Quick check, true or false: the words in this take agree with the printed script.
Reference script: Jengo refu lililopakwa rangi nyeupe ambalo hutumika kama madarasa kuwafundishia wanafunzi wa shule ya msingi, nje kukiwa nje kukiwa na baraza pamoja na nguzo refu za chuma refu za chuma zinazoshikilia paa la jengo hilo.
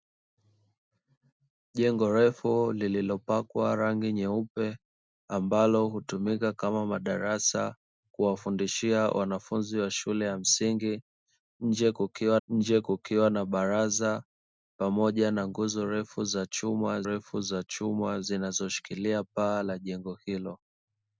true